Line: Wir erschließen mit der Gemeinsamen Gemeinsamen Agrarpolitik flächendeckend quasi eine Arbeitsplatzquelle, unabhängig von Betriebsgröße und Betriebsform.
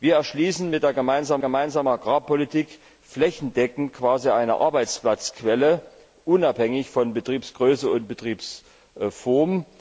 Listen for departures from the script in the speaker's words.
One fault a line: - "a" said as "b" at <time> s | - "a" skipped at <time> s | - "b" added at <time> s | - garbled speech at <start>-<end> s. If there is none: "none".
none